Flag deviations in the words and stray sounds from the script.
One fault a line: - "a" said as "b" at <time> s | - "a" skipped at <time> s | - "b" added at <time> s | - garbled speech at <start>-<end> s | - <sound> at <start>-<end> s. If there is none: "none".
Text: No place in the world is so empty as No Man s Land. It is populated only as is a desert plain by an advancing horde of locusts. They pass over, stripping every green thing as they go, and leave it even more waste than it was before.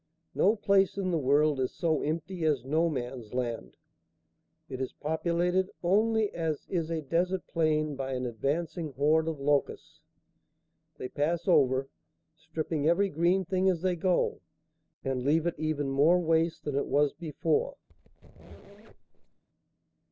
- squeak at 17.9-19.4 s